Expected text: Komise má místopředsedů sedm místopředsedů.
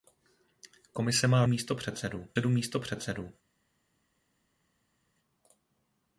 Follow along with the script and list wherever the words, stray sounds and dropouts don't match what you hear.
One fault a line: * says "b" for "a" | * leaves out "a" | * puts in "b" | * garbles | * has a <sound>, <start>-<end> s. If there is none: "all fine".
all fine